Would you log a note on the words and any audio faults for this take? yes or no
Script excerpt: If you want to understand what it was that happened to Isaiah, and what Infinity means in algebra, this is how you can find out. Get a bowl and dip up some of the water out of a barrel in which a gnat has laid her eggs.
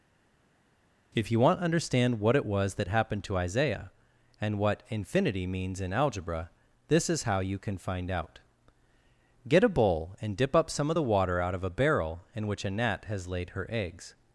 no